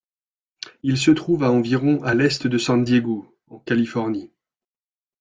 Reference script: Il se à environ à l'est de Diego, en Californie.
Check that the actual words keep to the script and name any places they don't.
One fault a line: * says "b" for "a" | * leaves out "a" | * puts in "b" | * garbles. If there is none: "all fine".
* puts in "trouve"
* puts in "San"